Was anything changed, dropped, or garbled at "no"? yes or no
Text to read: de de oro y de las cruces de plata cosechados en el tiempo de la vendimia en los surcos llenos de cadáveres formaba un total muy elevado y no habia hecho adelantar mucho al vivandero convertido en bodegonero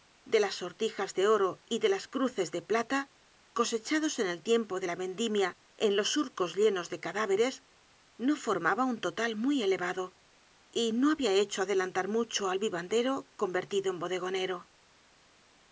no